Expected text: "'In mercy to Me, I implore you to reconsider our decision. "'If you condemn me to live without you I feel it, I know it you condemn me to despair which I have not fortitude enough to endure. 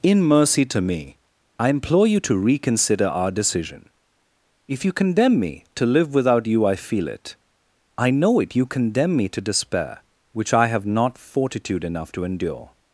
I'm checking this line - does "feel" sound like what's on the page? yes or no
yes